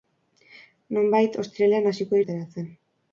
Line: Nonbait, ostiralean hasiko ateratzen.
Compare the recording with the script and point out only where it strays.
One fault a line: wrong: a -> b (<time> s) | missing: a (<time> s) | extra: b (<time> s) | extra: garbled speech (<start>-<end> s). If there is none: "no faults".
no faults